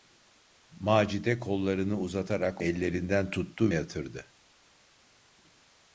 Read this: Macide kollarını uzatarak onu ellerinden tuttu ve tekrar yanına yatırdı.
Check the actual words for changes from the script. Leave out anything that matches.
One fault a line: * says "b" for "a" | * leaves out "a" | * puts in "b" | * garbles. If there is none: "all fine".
* leaves out "onu"
* leaves out "ve tekrar yanına"